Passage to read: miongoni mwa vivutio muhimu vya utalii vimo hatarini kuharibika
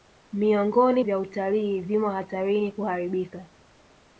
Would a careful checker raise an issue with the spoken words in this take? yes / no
yes